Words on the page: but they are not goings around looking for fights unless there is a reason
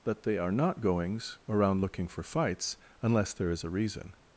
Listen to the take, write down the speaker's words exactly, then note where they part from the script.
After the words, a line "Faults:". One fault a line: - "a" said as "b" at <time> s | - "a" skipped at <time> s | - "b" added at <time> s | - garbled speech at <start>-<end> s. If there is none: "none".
but they are not goings around looking for fights unless there is a reason
Faults:
none